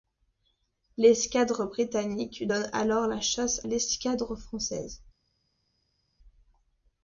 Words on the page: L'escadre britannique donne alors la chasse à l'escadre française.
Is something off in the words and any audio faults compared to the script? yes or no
yes